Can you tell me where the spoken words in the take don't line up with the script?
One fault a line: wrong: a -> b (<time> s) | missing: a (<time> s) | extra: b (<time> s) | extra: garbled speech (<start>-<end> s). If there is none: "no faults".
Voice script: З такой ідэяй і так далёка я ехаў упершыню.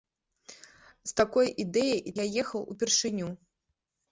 missing: так далёка (2.1 s)